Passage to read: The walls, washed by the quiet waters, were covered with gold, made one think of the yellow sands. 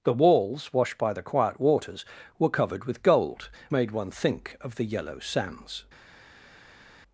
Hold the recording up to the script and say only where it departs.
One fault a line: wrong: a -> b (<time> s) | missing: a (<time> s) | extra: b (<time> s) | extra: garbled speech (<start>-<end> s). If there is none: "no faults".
no faults